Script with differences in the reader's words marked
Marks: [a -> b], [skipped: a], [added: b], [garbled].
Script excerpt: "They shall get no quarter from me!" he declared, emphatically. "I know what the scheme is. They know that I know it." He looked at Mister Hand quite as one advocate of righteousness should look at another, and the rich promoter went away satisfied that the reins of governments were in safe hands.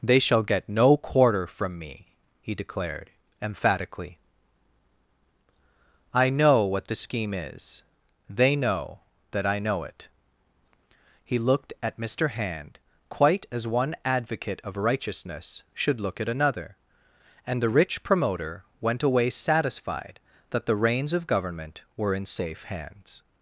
"They shall get no quarter from me!" he declared, emphatically. "I know what the scheme is. They know that I know it." He looked at Mister Hand quite as one advocate of righteousness should look at another, and the rich promoter went away satisfied that the reins of [governments -> government] were in safe hands.